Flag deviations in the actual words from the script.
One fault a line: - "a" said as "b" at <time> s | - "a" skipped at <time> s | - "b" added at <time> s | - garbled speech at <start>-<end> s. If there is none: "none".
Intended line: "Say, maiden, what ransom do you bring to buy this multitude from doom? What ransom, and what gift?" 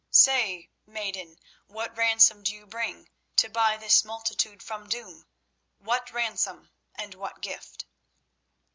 none